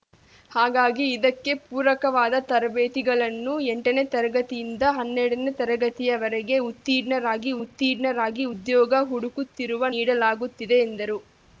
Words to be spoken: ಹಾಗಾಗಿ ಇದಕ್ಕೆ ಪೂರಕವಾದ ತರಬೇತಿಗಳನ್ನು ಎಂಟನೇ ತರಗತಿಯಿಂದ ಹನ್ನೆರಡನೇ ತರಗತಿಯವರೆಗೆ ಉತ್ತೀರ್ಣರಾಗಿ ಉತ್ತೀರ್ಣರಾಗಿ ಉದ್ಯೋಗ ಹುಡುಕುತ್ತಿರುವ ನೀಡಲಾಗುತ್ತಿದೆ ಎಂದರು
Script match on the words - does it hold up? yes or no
yes